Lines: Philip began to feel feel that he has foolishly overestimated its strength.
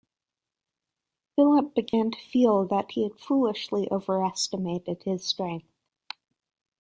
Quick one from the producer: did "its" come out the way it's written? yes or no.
no